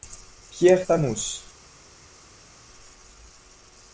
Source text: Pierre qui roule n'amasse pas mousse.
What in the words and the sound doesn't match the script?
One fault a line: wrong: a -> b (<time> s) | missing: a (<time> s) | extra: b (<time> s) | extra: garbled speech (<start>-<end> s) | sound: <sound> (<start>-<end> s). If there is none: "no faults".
missing: qui roule n'amasse (0.9 s)